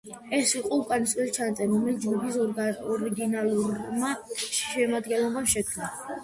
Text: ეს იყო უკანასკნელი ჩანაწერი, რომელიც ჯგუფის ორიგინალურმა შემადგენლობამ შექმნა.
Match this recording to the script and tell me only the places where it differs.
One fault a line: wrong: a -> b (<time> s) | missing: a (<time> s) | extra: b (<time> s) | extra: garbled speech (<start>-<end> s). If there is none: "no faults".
no faults